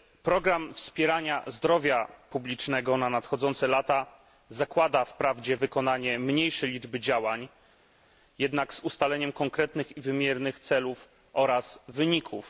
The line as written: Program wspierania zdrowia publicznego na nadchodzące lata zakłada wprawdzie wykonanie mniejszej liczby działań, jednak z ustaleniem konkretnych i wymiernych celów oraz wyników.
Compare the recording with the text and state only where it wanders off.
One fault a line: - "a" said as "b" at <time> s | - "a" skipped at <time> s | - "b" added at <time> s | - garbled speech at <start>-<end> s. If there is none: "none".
none